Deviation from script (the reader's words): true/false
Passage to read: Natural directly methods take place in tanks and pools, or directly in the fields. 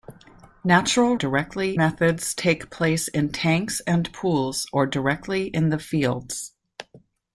false